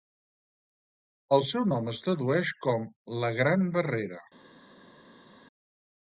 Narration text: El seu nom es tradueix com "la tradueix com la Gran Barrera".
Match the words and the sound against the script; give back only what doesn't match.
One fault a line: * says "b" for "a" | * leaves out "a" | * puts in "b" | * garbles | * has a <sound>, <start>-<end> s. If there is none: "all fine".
* leaves out "tradueix com la"